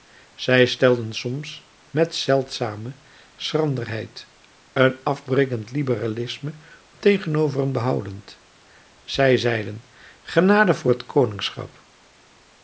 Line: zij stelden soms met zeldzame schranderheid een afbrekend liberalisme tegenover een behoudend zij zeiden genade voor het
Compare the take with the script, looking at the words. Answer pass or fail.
pass